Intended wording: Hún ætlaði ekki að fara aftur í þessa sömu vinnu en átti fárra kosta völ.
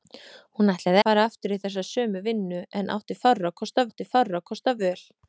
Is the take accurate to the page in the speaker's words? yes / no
no